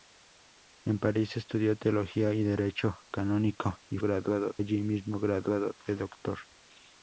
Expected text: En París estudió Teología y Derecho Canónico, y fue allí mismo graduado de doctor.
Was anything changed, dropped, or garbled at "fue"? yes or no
yes